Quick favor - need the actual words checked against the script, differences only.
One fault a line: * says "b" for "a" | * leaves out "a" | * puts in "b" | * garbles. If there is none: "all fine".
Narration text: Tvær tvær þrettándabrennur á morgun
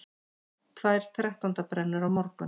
* leaves out "tvær"